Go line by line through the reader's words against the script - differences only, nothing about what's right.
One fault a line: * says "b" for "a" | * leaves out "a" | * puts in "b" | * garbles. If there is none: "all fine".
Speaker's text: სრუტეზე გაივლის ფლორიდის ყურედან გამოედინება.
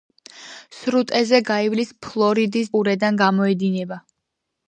all fine